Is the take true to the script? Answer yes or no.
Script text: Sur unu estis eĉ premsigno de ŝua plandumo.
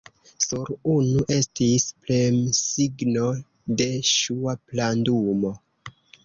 no